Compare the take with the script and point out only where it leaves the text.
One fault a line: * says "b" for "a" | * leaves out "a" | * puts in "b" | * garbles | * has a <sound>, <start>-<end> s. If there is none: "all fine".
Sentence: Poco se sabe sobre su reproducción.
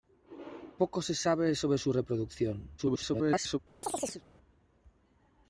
* garbles
* has a chirp, 3.8-4.2 s